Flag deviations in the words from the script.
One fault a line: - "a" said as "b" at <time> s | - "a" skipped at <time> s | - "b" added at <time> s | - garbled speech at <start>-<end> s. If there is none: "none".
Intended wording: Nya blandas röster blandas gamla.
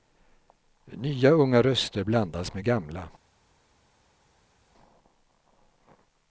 - "blandas" said as "unga" at 1.3 s
- "med" added at 2.5 s